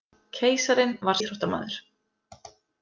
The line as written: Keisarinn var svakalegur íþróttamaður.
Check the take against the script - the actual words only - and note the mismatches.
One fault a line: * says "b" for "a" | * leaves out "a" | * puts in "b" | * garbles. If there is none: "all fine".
* leaves out "svakalegur"